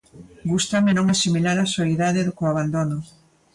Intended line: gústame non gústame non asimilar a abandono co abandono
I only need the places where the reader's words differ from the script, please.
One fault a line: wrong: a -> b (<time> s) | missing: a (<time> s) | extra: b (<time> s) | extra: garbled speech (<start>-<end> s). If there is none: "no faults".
missing: gústame non (1.1 s)
wrong: abandono -> soidade (1.8 s)